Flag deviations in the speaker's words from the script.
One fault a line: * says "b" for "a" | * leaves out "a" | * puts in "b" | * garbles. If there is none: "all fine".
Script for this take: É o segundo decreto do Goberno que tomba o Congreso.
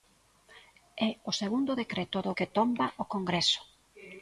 * leaves out "Goberno"